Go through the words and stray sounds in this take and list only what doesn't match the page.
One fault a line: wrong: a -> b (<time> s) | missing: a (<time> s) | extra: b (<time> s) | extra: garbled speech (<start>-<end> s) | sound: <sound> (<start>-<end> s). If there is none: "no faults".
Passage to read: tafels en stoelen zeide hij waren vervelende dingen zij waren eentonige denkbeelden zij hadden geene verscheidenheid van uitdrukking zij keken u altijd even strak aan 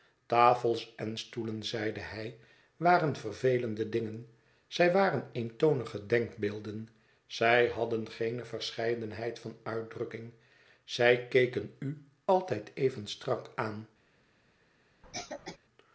sound: cough (15.0-15.6 s)